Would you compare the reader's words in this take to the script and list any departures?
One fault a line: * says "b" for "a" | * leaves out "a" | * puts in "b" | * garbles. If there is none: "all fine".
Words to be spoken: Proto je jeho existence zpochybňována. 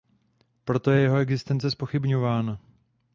all fine